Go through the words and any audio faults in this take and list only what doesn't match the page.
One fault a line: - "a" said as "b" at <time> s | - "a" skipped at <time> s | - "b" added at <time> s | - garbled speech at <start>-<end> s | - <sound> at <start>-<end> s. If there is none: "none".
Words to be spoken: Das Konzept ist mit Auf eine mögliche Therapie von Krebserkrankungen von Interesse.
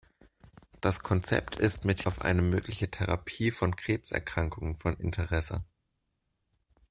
none